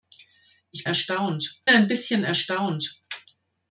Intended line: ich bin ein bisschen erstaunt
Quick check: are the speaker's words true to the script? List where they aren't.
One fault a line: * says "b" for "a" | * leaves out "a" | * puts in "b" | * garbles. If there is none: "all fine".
* says "erstaunt" for "bin"